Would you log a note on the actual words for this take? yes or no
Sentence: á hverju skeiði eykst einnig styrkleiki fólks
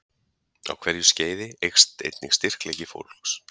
no